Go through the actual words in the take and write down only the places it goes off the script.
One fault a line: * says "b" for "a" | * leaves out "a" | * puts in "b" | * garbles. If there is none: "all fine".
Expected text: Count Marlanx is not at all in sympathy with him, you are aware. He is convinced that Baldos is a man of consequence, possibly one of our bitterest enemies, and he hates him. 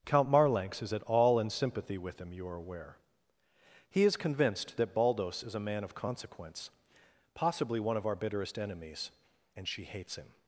* leaves out "not"
* says "she" for "he"